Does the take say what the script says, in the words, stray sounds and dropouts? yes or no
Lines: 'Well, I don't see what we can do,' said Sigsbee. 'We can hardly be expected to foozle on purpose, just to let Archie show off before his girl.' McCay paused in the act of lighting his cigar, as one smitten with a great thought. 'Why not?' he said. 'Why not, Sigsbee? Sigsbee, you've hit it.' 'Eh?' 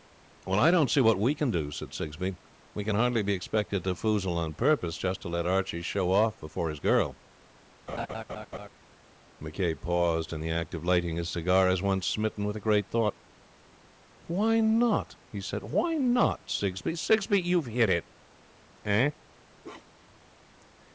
no